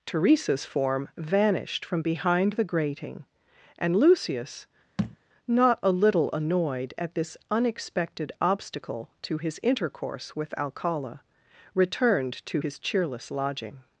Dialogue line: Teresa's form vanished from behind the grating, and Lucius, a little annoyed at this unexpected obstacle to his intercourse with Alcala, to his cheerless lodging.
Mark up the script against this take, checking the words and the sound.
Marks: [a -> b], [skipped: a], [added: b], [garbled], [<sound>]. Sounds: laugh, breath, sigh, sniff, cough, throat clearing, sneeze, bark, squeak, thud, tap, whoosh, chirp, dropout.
Teresa's form vanished from behind the grating, and Lucius, [thud] [added: not] a little annoyed at this unexpected obstacle to his intercourse with Alcala, [added: returned] to his cheerless lodging.